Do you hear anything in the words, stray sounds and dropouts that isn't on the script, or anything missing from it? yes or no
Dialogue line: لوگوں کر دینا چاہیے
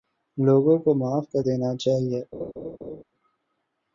yes